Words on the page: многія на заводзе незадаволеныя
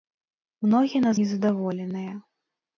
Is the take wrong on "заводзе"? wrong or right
wrong